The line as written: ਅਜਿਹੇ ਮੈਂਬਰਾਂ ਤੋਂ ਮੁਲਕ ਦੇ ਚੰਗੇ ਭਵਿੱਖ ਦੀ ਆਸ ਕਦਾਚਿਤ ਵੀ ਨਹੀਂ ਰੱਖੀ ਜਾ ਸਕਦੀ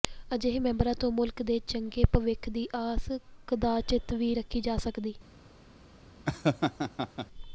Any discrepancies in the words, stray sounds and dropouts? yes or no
yes